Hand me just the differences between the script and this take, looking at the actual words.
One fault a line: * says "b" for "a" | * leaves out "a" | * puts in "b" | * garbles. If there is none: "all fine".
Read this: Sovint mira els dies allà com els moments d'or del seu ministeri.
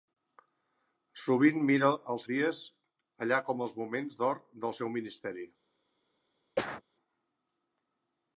all fine